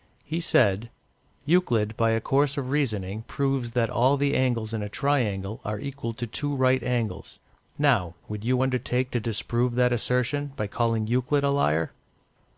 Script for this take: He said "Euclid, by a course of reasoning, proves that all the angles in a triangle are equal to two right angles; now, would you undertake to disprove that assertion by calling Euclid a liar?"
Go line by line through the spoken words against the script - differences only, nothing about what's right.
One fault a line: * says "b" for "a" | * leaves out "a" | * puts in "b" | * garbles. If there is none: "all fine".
all fine